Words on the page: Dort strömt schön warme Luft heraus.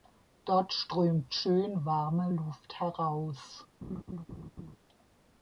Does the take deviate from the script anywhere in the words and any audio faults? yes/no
yes